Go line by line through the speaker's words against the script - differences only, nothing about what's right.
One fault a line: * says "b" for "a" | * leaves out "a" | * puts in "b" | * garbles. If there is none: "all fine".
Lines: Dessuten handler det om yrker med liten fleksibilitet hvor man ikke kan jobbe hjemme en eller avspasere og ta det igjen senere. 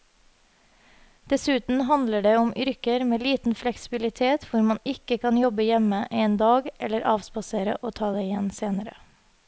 * puts in "dag"